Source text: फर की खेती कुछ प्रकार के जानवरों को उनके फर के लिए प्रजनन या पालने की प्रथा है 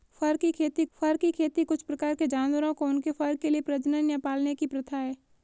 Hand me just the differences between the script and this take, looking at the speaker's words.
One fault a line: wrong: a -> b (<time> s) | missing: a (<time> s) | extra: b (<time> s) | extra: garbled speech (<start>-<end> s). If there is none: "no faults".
extra: फर की खेती (0.9 s)